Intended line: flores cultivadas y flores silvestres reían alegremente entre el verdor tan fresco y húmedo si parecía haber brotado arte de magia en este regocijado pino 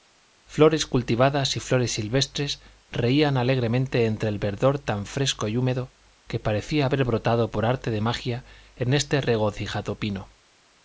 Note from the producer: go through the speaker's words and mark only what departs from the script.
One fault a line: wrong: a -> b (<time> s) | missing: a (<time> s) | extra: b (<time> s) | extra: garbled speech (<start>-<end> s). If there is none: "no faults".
wrong: si -> que (6.3 s)
extra: por (7.5 s)